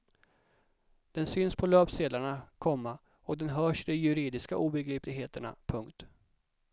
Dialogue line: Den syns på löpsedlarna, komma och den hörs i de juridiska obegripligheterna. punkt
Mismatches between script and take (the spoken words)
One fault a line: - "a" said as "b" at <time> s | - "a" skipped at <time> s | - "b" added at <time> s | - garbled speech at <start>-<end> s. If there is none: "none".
none